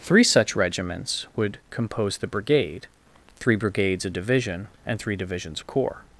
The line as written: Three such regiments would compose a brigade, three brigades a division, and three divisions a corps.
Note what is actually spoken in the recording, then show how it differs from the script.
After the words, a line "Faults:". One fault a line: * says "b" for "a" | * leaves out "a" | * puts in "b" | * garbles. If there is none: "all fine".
Three such regiments would compose the brigade, three brigades a division, and three divisions a corps.
Faults:
* says "the" for "a"